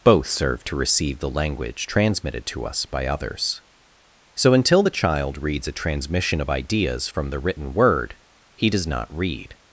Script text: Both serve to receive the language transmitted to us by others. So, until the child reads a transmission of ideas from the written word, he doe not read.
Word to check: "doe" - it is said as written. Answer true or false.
false